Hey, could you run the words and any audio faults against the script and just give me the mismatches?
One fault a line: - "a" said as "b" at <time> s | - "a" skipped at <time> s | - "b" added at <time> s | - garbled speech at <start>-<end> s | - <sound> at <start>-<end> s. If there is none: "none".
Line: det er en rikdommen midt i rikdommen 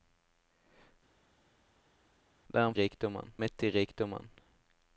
none